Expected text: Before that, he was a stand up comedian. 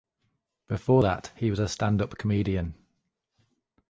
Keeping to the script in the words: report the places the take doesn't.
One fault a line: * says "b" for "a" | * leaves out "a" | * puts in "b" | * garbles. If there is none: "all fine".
all fine